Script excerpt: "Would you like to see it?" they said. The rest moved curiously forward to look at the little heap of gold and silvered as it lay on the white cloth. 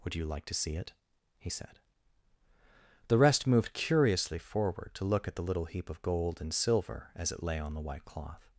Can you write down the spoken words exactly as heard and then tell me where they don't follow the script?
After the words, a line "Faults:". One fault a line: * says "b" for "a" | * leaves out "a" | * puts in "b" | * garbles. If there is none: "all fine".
"Would you like to see it?" he said. The rest moved curiously forward to look at the little heap of gold and silver as it lay on the white cloth.
Faults:
* says "he" for "they"
* says "silver" for "silvered"